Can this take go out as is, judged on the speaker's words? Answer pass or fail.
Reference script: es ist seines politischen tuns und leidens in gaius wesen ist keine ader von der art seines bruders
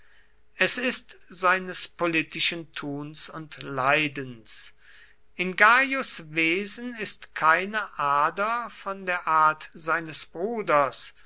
pass